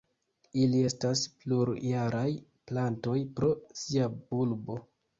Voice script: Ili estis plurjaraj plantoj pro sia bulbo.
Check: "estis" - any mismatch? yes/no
yes